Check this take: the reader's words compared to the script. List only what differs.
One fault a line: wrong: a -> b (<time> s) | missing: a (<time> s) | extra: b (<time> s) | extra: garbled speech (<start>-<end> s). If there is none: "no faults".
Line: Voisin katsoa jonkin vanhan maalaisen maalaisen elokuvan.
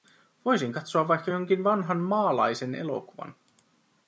extra: vaikka (1.1 s)
missing: maalaisen (2.7 s)